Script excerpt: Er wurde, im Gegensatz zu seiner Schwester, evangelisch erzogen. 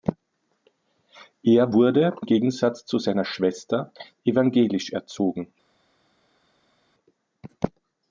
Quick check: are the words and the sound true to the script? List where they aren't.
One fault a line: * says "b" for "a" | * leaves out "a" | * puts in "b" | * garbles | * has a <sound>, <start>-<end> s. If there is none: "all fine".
* leaves out "im"